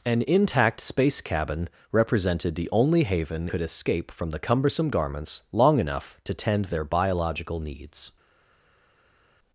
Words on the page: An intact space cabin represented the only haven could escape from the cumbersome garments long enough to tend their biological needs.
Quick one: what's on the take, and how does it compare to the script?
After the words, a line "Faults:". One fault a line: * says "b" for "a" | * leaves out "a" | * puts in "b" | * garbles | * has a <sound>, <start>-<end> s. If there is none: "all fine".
An intact space cabin represented the only haven could escape from the cumbersome garments long enough to tend their biological needs.
Faults:
all fine